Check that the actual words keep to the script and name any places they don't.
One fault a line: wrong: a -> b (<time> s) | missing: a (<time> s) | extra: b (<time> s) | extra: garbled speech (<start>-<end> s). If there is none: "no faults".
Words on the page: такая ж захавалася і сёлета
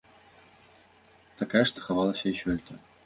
no faults